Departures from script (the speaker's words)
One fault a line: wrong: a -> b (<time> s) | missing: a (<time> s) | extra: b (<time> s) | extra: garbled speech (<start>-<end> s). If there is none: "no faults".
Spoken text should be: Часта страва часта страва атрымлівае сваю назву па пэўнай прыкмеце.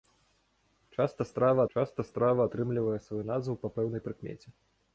no faults